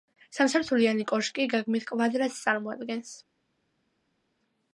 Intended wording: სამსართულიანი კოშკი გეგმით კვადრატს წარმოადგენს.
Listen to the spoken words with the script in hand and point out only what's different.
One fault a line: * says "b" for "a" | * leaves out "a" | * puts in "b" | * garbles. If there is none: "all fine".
all fine